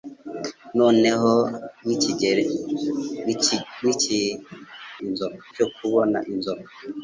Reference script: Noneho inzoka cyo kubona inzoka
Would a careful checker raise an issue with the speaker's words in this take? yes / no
no